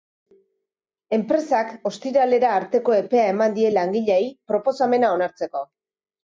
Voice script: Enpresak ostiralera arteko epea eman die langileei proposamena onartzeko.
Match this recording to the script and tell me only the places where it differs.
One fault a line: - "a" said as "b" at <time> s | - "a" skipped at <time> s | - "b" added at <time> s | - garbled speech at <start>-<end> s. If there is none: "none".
none